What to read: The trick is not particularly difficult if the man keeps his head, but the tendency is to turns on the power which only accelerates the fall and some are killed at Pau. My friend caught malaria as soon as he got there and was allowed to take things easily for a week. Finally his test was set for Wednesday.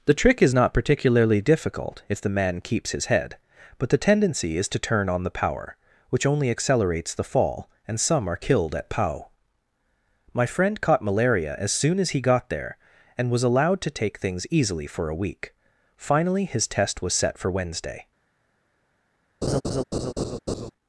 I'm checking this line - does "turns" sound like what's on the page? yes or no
no